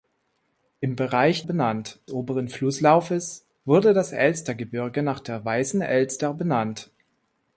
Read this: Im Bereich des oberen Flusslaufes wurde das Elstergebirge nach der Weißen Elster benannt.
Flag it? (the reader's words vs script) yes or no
yes